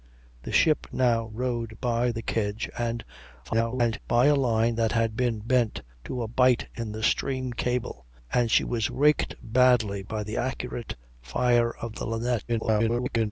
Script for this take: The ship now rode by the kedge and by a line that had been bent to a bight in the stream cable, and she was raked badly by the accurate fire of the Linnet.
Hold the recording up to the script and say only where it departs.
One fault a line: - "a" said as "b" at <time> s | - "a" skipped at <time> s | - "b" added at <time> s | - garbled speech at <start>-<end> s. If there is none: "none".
- garbled speech at 3.4-4.0 s
- garbled speech at 12.5-13.3 s